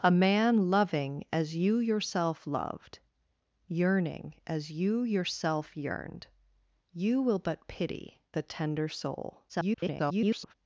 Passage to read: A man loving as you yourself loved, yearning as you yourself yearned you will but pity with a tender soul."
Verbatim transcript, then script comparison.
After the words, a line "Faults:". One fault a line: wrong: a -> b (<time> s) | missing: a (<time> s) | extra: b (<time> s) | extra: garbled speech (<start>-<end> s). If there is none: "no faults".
A man loving as you yourself loved, yearning as you yourself yearned you will but pity a tender soul." [garbled]
Faults:
missing: with (8.2 s)
extra: garbled speech (9.5-10.5 s)